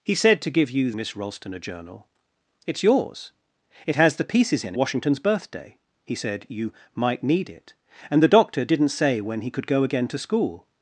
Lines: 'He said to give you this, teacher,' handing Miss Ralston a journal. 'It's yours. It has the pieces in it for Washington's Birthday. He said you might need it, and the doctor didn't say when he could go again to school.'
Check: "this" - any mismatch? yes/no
yes